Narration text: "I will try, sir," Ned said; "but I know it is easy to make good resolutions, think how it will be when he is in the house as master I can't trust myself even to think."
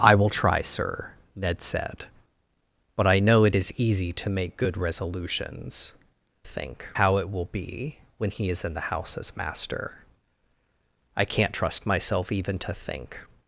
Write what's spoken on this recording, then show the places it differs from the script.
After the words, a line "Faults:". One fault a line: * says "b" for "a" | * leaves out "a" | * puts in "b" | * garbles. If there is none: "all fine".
"I will try, sir," Ned said; "but I know it is easy to make good resolutions, think how it will be when he is in the house as master I can't trust myself even to think."
Faults:
all fine